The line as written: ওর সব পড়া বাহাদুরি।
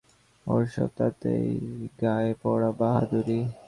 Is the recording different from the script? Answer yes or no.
yes